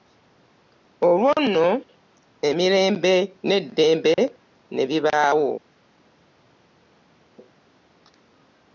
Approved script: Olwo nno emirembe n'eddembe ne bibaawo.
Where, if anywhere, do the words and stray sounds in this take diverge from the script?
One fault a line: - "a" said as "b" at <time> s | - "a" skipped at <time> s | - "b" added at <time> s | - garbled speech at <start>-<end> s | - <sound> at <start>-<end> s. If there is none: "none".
none